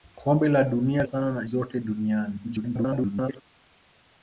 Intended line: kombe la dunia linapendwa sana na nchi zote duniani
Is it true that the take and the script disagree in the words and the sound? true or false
true